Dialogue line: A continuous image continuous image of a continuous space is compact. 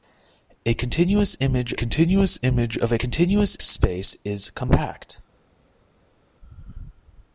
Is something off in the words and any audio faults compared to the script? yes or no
no